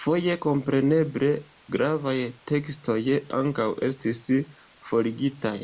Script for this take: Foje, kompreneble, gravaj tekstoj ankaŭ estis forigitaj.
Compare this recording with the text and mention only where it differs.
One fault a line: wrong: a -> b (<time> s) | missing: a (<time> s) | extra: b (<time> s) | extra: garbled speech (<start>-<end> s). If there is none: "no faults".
no faults